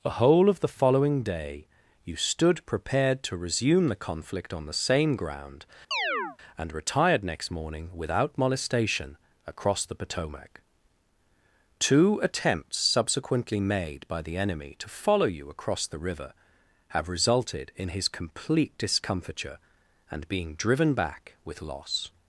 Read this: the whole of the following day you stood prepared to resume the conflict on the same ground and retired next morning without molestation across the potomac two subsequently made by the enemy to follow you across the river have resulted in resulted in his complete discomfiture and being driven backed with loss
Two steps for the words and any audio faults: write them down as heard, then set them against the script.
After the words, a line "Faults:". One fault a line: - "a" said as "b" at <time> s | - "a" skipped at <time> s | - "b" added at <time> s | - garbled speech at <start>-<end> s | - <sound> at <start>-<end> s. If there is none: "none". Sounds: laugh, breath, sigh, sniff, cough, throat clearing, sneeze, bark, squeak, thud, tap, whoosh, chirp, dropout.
the whole of the following day you stood prepared to resume the conflict on the same ground and retired next morning without molestation across the potomac two attempts subsequently made by the enemy to follow you across the river have resulted in his complete discomfiture and being driven back with loss
Faults:
- chirp at 5.9-6.4 s
- "attempts" added at 12.2 s
- "resulted in" skipped at 17.9 s
- "backed" said as "back" at 20.9 s